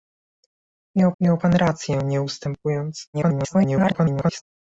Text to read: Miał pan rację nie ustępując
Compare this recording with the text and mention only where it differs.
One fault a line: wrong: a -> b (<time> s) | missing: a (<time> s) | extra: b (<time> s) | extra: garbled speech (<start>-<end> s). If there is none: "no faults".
extra: miał (1.2 s)
extra: garbled speech (3.1-4.4 s)